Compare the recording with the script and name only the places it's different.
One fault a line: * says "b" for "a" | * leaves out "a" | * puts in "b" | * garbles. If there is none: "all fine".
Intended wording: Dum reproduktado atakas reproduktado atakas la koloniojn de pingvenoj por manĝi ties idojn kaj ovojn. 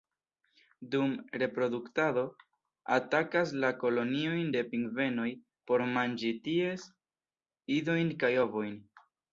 * leaves out "reproduktado atakas"